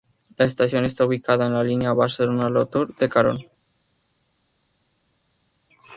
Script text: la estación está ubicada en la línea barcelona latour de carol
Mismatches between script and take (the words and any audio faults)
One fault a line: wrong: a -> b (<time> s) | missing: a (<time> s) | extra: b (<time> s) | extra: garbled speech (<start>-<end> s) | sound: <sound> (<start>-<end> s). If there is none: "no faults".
no faults